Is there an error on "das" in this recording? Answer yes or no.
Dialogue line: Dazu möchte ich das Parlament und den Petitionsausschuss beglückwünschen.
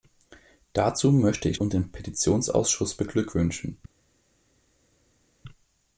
yes